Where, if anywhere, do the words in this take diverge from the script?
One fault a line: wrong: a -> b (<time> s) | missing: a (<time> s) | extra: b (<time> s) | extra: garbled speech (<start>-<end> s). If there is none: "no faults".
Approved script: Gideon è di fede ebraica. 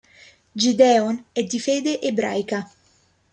no faults